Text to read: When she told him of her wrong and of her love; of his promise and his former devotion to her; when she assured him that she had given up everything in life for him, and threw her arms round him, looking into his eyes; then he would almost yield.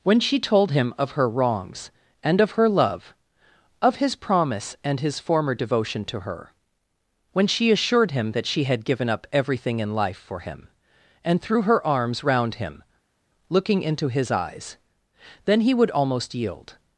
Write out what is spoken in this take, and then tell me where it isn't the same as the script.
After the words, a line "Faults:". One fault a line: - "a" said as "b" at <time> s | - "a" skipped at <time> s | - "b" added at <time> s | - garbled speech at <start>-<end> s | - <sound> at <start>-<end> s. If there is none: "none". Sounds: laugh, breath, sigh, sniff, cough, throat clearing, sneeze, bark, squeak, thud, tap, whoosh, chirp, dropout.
When she told him of her wrongs and of her love; of his promise and his former devotion to her; when she assured him that she had given up everything in life for him, and threw her arms round him, looking into his eyes; then he would almost yield.
Faults:
- "wrong" said as "wrongs" at 1.3 s